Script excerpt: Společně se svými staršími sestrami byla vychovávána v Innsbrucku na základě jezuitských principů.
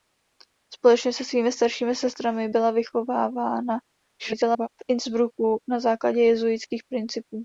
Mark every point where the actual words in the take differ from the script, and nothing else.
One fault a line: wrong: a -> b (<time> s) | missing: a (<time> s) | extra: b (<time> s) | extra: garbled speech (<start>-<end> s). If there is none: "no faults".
extra: garbled speech (4.2-4.7 s)